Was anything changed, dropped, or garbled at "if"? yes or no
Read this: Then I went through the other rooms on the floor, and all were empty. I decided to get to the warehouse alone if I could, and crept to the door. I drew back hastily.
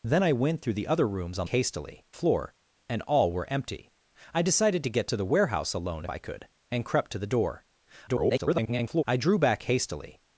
yes